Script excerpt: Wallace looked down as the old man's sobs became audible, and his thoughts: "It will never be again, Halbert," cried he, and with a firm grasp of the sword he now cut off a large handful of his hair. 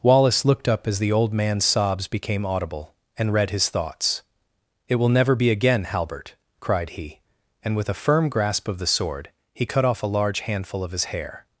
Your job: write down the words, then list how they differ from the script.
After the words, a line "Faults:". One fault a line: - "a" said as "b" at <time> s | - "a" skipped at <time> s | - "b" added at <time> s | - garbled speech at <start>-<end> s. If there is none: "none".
Wallace looked up as the old man's sobs became audible, and read his thoughts: "It will never be again, Halbert," cried he, and with a firm grasp of the sword he cut off a large handful of his hair.
Faults:
- "down" said as "up" at 0.7 s
- "read" added at 3.3 s
- "now" skipped at 9.7 s